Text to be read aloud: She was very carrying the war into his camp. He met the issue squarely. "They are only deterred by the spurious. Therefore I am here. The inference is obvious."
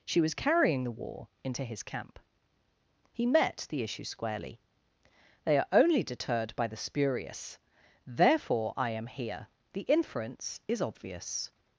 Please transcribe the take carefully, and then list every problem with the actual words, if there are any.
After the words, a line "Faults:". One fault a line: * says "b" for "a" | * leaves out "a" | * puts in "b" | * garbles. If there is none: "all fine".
She was carrying the war into his camp. He met the issue squarely. "They are only deterred by the spurious. Therefore I am here. The inference is obvious."
Faults:
* leaves out "very"